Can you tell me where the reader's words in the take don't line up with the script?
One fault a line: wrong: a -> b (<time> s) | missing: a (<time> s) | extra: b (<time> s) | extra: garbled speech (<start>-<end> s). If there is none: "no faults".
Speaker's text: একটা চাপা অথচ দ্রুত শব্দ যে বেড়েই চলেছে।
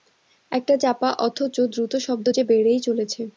no faults